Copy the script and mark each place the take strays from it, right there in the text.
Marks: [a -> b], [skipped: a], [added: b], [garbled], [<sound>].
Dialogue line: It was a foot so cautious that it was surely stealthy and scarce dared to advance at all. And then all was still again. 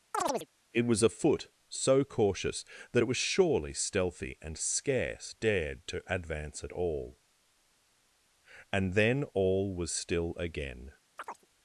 [chirp] It was a foot so cautious that it was surely stealthy and scarce dared to advance at all. And then all was still again. [chirp]